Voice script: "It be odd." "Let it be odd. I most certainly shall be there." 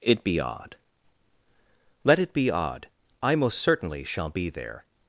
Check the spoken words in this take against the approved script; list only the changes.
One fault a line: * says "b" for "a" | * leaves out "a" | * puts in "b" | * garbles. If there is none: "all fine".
all fine